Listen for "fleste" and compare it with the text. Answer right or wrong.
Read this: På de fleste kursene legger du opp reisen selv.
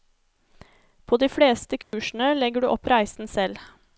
right